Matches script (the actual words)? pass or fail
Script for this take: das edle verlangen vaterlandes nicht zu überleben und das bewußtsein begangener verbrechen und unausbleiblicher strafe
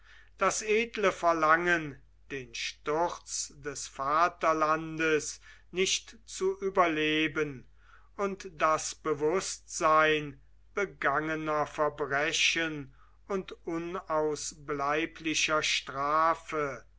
fail